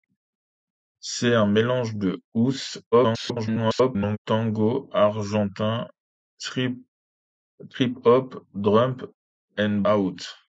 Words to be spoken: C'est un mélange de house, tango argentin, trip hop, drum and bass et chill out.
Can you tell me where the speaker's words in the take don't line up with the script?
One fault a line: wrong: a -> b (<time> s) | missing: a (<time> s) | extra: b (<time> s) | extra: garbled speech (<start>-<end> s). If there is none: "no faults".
extra: garbled speech (2.9-4.2 s)
missing: bass et chill (9.8 s)